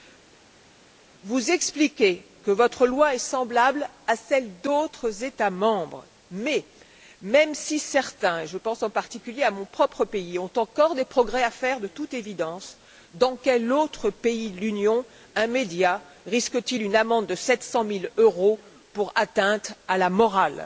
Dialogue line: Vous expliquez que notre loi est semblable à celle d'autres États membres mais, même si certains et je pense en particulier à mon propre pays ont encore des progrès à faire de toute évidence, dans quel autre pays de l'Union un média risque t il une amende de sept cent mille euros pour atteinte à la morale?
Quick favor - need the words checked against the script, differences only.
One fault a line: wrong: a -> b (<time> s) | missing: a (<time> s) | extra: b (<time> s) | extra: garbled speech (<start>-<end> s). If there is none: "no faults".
wrong: notre -> votre (2.5 s)